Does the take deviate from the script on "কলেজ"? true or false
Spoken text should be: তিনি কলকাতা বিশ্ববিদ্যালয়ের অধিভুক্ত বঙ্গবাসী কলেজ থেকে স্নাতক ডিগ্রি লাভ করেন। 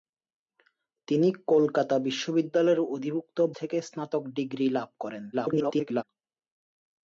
true